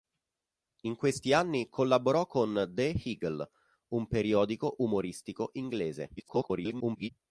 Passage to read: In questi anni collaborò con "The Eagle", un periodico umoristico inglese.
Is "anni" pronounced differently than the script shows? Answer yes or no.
no